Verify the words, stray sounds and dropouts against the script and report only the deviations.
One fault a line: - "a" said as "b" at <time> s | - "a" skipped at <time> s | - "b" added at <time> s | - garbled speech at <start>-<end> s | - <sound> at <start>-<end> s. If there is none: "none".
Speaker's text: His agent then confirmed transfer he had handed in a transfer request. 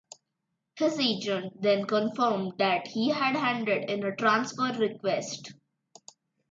- "transfer" said as "that" at 2.6 s